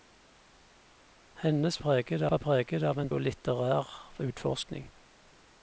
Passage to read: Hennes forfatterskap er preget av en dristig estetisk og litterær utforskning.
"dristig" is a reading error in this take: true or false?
true